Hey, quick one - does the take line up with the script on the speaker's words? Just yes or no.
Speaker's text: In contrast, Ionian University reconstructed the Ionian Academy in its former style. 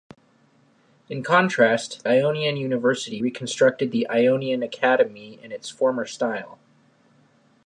yes